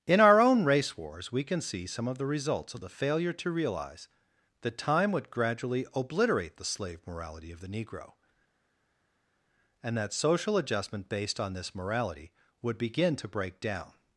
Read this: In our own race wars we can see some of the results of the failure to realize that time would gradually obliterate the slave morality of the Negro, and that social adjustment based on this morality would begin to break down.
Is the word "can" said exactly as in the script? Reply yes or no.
yes